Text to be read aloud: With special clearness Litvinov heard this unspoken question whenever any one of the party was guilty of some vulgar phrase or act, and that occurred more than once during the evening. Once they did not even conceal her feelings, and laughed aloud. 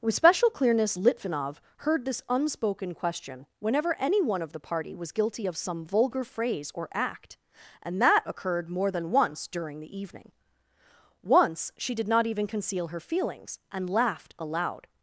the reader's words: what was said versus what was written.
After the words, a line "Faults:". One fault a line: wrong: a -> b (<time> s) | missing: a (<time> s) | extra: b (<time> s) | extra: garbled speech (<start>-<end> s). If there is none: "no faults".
With special clearness Litvinov heard this unspoken question whenever any one of the party was guilty of some vulgar phrase or act, and that occurred more than once during the evening. Once she did not even conceal her feelings, and laughed aloud.
Faults:
wrong: they -> she (11.8 s)